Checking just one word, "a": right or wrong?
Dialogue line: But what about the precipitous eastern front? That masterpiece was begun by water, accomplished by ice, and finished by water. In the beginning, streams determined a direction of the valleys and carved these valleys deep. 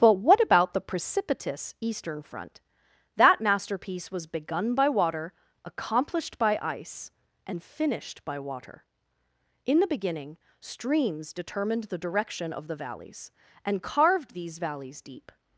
wrong